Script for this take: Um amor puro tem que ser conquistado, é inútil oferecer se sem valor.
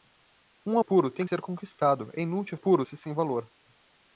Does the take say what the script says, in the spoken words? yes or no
no